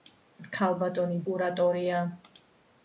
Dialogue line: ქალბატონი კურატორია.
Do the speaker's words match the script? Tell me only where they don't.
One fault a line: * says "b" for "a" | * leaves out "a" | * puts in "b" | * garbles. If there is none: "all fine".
all fine